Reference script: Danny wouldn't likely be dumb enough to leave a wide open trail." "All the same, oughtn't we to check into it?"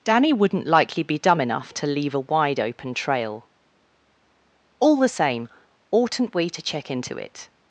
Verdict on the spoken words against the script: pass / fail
pass